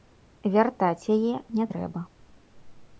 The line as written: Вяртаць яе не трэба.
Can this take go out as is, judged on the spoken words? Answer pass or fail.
pass